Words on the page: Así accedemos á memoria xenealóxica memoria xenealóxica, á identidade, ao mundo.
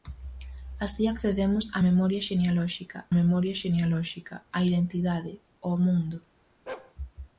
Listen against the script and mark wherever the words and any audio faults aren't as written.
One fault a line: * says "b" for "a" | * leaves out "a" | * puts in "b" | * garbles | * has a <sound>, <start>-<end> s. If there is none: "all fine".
* has a bark, 6.7-6.9 s